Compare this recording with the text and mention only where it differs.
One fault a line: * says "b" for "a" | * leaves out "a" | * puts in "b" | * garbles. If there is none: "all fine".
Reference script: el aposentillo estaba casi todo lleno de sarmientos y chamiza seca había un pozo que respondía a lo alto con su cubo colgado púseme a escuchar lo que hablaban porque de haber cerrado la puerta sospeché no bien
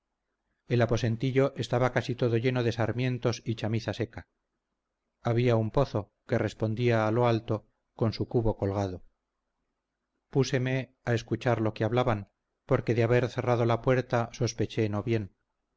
all fine